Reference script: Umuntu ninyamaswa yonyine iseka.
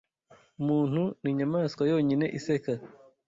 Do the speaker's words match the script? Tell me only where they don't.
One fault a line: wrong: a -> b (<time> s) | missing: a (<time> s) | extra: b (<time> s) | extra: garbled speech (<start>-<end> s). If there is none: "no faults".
no faults